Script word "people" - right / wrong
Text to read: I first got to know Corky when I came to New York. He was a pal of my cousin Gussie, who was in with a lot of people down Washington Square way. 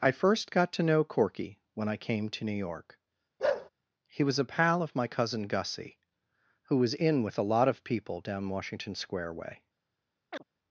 right